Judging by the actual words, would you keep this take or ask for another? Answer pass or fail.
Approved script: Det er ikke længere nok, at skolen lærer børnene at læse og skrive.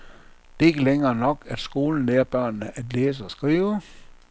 pass